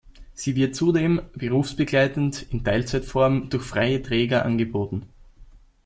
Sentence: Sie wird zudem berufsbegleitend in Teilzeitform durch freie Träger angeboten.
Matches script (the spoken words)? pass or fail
pass